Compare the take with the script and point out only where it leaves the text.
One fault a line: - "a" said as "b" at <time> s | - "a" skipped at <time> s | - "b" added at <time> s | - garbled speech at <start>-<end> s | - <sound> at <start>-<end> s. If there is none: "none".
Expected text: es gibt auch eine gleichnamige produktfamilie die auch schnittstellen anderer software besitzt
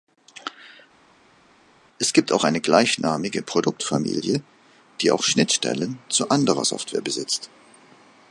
- "zu" added at 6.1 s